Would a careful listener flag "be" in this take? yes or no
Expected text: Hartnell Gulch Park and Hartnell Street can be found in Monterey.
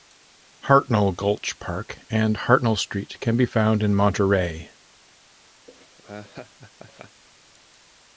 no